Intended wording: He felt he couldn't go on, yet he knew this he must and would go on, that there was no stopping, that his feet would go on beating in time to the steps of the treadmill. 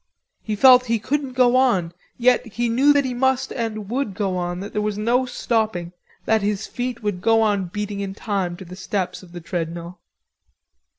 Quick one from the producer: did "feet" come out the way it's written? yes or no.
yes